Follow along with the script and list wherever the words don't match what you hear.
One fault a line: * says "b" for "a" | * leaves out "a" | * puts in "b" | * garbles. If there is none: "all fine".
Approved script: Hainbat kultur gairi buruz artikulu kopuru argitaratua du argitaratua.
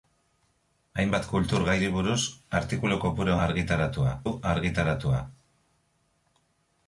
all fine